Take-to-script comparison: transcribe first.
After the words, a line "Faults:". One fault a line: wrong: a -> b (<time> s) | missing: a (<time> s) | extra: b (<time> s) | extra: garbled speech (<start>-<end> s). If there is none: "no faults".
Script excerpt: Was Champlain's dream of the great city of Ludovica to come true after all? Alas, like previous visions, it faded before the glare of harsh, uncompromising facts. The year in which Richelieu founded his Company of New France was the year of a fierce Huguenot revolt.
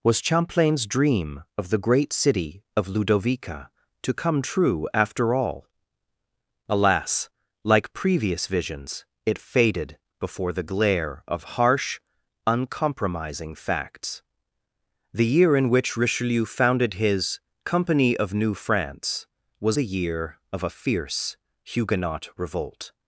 Was Champlain's dream of the great city of Ludovica to come true after all? Alas, like previous visions, it faded before the glare of harsh, uncompromising facts. The year in which Richelieu founded his Company of New France was the year of a fierce Huguenot revolt.
Faults:
no faults